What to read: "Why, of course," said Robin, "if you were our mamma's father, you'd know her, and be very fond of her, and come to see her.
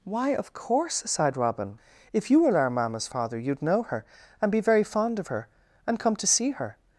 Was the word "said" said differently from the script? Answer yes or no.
yes